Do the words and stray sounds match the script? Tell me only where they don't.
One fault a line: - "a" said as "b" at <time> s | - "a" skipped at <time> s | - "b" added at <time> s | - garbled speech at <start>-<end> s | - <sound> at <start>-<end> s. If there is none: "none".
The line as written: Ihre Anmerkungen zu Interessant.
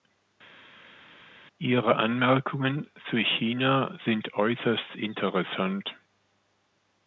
- "China sind äußerst" added at 3.2 s